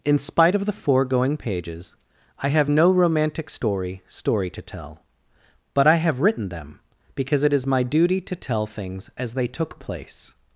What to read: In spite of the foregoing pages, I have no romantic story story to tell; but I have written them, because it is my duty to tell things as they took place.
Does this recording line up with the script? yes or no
yes